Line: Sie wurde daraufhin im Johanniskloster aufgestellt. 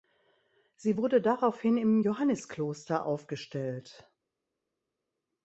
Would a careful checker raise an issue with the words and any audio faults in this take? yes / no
no